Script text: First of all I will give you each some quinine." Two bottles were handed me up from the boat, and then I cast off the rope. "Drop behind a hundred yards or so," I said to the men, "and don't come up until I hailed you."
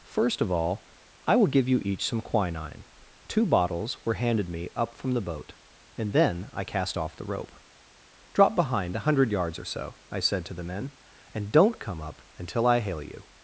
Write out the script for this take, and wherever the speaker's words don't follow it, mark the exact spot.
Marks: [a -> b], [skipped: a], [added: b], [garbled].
First of all I will give you each some quinine." Two bottles were handed me up from the boat, and then I cast off the rope. "Drop behind a hundred yards or so," I said to the men, "and don't come up until I [hailed -> hail] you."